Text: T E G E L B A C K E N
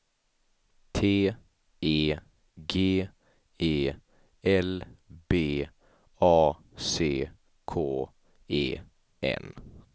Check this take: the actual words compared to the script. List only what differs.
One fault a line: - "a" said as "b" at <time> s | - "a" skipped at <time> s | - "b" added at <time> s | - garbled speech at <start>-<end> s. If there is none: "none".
none